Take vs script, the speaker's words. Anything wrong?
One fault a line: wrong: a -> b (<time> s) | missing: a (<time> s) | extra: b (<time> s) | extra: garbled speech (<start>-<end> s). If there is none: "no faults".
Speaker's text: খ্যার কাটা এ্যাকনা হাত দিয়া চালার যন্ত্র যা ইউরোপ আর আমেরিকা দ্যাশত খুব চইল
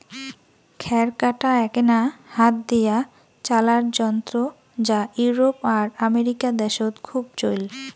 no faults